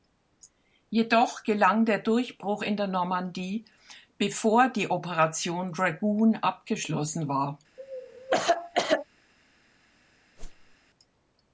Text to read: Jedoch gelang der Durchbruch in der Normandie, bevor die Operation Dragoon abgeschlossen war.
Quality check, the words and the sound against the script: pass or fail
fail